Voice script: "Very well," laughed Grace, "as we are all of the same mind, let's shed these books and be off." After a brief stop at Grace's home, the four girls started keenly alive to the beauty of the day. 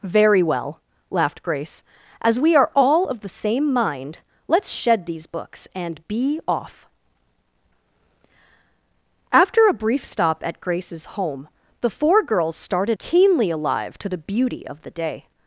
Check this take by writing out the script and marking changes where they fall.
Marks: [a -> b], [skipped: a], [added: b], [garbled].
"Very well," laughed Grace, "as we are all of the same mind, let's shed these books and be off." After a brief stop at Grace's home, the four girls started keenly alive to the beauty of the day.